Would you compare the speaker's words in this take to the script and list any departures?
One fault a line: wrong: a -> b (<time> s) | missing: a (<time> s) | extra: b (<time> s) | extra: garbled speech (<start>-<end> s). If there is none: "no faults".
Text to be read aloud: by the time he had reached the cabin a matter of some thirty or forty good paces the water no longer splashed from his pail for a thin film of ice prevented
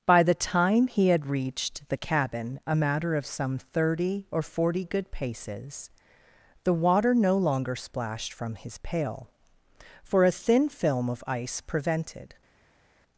no faults